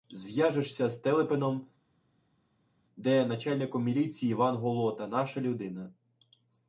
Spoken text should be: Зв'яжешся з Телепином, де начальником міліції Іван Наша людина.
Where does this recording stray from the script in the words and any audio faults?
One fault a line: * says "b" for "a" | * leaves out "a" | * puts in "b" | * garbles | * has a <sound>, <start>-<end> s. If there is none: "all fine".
* puts in "Голота"